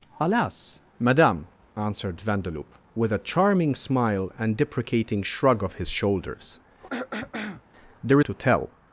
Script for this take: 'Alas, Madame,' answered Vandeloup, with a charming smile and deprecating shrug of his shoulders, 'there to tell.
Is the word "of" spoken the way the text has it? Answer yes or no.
yes